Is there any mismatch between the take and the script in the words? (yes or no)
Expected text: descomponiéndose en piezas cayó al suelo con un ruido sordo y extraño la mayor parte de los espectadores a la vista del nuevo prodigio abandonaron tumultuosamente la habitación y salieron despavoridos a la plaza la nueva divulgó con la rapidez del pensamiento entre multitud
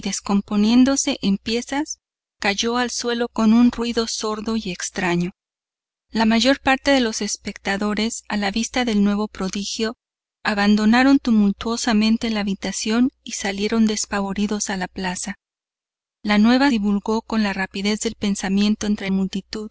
no